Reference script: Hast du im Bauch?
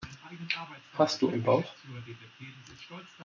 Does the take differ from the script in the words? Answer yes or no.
no